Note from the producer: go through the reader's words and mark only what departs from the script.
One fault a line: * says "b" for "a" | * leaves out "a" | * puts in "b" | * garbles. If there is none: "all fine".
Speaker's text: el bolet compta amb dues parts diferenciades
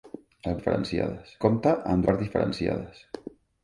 * says "diferenciades" for "bolet"
* leaves out "dues"